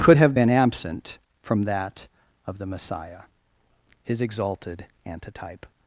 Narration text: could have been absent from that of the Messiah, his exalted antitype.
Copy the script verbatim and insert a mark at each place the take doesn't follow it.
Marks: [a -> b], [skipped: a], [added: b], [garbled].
could have been absent from that of the Messiah, his exalted antitype.